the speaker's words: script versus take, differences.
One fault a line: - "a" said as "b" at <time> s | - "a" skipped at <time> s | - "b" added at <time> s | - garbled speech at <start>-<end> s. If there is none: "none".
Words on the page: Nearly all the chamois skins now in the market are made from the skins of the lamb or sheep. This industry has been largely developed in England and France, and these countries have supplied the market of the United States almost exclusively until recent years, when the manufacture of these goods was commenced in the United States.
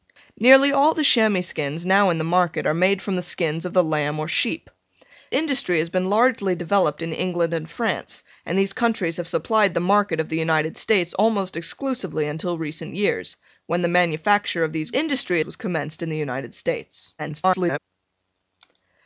- "This" skipped at 4.7 s
- "goods" said as "industry" at 14.9 s
- garbled speech at 17.2-17.8 s